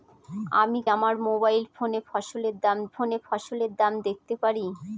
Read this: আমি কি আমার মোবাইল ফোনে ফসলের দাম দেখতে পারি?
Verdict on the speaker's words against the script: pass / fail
fail